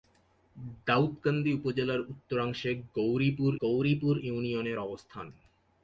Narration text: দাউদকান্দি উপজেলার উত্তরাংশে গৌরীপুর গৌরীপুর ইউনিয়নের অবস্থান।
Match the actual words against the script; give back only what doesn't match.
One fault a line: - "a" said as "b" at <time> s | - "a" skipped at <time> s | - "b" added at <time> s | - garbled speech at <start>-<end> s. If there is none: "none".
none